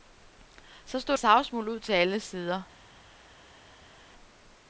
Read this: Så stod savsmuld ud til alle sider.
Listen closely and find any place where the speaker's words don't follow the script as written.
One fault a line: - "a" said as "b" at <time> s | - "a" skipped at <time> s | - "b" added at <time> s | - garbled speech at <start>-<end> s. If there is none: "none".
none